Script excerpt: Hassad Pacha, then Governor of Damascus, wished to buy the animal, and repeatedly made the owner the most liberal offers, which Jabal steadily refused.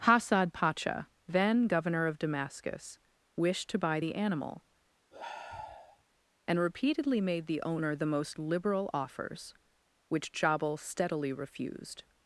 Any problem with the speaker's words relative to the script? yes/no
no